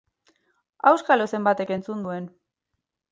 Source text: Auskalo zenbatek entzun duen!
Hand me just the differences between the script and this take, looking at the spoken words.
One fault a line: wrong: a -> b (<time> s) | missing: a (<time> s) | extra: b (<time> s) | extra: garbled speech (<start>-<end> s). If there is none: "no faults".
no faults